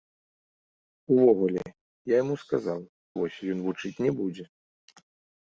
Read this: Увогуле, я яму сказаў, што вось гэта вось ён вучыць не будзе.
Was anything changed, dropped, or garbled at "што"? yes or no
yes